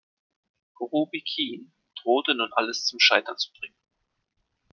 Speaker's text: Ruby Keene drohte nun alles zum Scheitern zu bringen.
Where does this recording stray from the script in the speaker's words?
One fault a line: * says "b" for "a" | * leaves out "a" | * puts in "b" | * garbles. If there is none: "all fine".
all fine